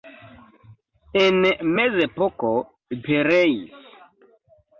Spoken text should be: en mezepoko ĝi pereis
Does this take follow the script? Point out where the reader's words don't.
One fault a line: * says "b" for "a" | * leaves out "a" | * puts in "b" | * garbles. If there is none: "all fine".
* leaves out "ĝi"